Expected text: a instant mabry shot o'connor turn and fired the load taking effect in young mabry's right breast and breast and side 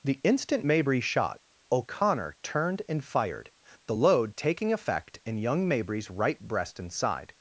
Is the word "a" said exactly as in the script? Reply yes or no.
no